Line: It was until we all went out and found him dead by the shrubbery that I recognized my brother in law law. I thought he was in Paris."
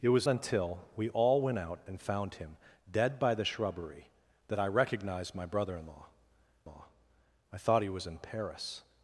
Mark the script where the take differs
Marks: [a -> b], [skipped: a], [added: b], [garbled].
It was until we all went out and found him dead by the shrubbery that I recognized my brother in law law. I thought he was in Paris."